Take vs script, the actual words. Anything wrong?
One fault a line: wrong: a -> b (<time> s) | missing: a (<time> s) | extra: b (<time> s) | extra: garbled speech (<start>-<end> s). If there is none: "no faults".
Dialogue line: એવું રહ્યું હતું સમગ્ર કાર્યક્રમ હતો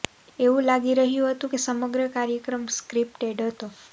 extra: લાગી (0.7 s)
extra: કે (1.5 s)
extra: સ્ક્રિપ્ટેડ (2.8 s)